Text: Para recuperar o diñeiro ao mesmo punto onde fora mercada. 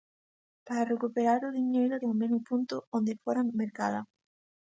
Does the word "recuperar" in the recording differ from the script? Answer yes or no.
no